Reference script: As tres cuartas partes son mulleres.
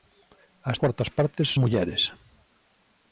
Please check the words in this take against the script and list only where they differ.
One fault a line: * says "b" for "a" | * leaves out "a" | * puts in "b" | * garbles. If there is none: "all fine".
* leaves out "tres"
* leaves out "son"